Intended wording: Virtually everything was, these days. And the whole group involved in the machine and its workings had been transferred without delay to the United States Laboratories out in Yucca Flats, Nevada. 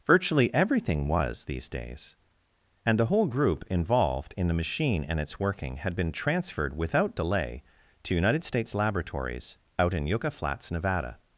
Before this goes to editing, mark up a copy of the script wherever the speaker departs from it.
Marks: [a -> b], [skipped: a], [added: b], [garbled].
Virtually everything was, these days. And the whole group involved in the machine and its [workings -> working] had been transferred without delay to [skipped: the] United States Laboratories out in Yucca Flats, Nevada.